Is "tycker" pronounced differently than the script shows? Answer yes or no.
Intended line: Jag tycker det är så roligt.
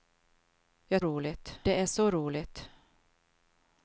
yes